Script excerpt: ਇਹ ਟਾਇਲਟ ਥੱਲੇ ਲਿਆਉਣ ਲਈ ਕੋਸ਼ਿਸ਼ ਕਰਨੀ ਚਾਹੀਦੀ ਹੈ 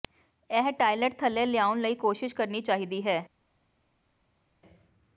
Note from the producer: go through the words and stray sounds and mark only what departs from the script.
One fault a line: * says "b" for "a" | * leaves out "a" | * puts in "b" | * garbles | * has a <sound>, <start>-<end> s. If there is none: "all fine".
all fine